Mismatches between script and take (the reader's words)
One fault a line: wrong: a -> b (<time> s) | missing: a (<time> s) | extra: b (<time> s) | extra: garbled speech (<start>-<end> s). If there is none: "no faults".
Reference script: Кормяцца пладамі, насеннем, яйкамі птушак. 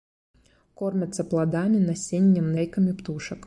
no faults